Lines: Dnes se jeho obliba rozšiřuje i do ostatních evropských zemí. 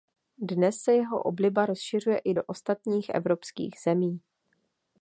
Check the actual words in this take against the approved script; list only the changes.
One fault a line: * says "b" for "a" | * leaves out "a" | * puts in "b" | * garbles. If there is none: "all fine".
all fine